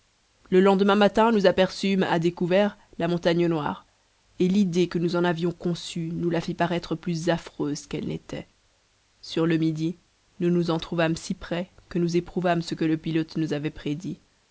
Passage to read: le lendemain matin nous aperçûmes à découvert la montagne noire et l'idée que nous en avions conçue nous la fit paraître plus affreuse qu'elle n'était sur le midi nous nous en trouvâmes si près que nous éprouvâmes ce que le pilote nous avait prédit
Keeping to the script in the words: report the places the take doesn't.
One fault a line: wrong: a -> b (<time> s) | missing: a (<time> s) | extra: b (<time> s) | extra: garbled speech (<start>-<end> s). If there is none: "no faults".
no faults